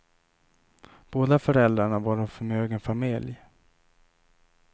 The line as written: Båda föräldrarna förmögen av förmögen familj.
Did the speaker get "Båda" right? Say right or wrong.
right